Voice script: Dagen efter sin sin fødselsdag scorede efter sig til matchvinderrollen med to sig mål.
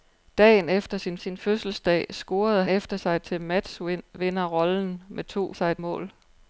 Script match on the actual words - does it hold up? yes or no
yes